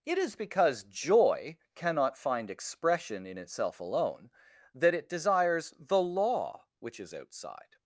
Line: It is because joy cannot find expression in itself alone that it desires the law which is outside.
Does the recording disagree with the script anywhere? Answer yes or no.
no